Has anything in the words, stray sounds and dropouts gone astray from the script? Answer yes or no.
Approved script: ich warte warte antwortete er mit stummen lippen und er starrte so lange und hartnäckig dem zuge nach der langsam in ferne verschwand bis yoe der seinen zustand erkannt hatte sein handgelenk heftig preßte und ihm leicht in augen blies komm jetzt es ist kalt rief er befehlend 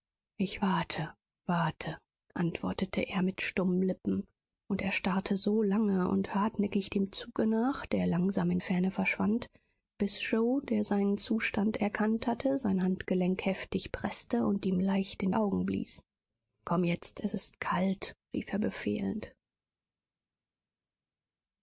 no